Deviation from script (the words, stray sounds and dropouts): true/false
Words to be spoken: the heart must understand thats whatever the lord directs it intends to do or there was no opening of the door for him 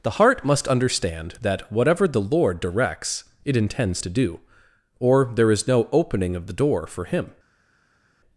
true